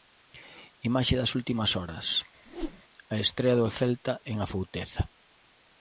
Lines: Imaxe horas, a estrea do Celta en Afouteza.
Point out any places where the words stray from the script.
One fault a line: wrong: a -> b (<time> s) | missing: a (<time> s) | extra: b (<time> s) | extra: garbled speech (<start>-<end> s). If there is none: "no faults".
extra: das últimas (1.2 s)